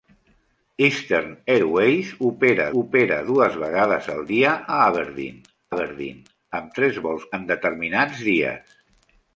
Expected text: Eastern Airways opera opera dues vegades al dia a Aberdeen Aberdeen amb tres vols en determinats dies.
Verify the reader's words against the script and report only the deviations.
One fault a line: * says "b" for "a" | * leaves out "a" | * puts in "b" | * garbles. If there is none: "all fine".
all fine